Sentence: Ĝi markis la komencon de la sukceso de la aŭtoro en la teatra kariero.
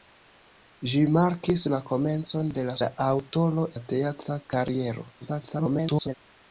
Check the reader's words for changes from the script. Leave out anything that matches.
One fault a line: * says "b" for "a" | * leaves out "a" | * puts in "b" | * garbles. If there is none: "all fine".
* leaves out "sukceso de"
* leaves out "en"
* garbles